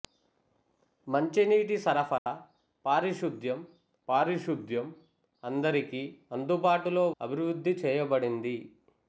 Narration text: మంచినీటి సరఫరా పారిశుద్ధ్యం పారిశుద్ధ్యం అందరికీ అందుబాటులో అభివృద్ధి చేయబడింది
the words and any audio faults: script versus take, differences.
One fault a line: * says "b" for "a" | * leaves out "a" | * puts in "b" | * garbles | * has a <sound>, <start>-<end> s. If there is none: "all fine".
* has a dropout, 2.2-2.3 s